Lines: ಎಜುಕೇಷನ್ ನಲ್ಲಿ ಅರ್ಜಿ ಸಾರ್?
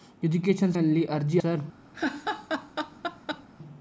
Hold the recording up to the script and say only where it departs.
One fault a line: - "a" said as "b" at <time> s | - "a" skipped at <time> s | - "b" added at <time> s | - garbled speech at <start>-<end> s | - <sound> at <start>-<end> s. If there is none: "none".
- laugh at 1.9-3.5 s